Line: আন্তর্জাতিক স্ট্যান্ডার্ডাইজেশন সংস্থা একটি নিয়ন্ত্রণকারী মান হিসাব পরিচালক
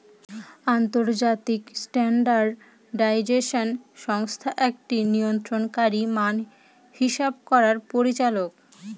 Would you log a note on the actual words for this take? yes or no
yes